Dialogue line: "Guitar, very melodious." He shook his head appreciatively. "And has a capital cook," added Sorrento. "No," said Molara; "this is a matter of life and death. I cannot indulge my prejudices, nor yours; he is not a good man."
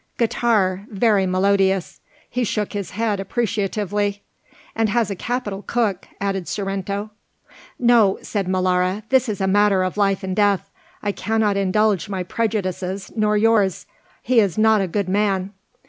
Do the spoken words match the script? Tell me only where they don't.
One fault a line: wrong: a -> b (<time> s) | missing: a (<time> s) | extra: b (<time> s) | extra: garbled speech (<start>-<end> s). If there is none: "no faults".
no faults